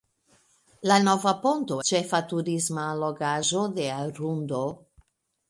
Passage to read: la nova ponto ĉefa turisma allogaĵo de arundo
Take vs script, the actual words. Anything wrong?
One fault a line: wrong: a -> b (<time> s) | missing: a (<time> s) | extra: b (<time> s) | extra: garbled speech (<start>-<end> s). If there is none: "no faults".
no faults